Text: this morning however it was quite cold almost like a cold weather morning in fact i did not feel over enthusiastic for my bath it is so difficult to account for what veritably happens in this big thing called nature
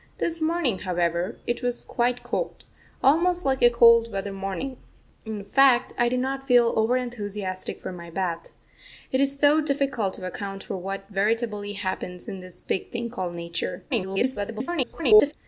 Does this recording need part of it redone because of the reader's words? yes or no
yes